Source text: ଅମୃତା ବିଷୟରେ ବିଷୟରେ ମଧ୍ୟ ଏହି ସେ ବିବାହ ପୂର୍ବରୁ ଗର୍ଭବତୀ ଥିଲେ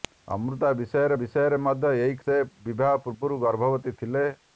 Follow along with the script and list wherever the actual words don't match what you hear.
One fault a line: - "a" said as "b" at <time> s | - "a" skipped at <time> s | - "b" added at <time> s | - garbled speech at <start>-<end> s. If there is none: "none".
none